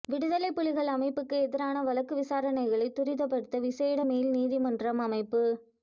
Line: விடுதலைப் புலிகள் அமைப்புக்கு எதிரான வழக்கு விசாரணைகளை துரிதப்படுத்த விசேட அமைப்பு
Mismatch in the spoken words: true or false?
true